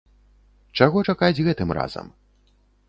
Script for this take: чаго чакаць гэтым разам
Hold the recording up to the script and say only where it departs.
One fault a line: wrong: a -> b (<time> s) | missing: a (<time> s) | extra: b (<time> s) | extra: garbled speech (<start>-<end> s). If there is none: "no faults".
no faults